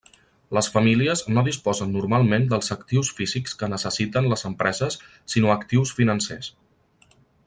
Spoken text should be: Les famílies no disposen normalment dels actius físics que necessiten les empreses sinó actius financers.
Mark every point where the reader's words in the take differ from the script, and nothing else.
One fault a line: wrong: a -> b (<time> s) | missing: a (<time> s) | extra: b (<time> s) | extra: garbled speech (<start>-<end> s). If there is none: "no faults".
no faults